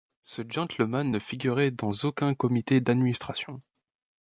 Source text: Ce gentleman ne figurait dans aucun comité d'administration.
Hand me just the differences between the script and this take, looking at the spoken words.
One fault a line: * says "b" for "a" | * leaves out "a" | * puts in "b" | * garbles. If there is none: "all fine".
all fine